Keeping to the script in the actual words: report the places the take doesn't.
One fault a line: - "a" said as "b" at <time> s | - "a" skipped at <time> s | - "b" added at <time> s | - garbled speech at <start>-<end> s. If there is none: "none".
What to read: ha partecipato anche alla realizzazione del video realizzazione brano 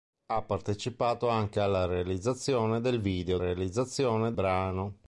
none